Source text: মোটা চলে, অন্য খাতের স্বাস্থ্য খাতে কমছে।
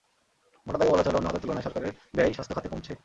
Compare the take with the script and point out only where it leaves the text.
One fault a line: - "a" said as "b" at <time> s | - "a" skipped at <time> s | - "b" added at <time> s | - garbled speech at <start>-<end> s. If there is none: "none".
- "দাগে বলা" added at 0.8 s
- "তুলনায় সরকারের ব্যয়" added at 1.4 s